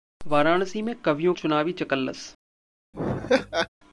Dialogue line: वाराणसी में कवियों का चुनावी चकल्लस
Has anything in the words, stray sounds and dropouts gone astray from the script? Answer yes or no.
yes